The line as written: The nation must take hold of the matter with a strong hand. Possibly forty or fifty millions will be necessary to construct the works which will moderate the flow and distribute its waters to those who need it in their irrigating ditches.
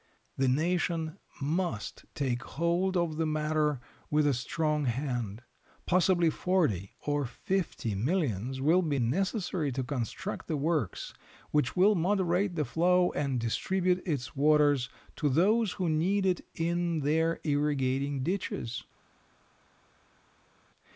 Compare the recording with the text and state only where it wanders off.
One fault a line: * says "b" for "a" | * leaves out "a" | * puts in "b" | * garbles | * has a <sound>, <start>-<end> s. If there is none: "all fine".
all fine